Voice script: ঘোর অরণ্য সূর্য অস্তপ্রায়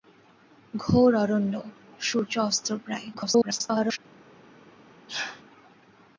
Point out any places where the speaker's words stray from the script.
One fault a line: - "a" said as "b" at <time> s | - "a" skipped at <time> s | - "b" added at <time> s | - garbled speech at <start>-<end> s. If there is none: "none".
- garbled speech at 3.1-4.0 s